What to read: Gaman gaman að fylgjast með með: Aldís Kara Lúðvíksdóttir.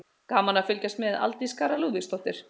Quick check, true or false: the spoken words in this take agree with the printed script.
false